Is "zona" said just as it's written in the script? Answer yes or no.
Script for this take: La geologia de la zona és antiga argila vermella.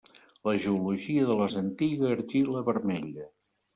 no